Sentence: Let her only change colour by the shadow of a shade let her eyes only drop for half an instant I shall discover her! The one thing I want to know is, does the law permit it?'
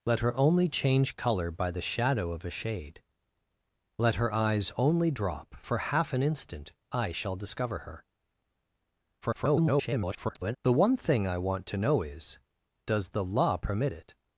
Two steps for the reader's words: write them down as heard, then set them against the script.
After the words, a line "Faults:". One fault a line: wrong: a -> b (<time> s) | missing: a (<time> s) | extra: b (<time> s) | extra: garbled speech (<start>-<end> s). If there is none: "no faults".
Let her only change colour by the shadow of a shade let her eyes only drop for half an instant I shall discover her! [garbled] The one thing I want to know is, does the law permit it?'
Faults:
extra: garbled speech (9.2-10.6 s)